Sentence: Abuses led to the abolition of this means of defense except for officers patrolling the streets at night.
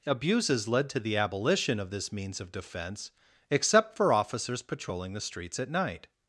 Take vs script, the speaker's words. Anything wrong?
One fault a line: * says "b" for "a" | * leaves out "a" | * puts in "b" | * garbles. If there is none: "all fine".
all fine